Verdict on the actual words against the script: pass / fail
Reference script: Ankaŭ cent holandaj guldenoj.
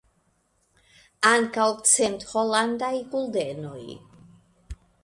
pass